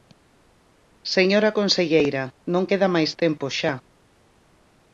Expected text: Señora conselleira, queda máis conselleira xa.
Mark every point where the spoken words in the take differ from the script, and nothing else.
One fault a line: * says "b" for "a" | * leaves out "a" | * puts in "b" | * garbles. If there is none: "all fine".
* puts in "non"
* says "tempo" for "conselleira"